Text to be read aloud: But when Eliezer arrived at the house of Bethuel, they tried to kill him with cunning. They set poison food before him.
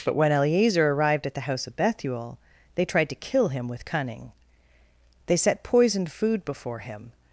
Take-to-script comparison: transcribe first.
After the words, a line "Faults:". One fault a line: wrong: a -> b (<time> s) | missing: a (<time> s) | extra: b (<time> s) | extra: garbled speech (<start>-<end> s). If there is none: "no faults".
But when Eliezer arrived at the house of Bethuel, they tried to kill him with cunning. They set poisoned food before him.
Faults:
wrong: poison -> poisoned (5.6 s)